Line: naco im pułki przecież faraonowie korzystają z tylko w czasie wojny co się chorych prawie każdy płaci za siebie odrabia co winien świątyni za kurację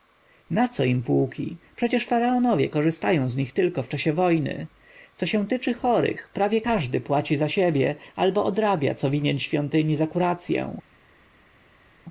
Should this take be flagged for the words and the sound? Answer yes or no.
yes